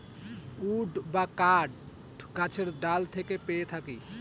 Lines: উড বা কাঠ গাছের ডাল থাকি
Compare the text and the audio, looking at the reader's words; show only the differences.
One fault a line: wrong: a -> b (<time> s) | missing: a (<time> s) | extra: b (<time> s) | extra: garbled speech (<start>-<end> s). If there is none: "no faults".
extra: থেকে পেয়ে (3.1 s)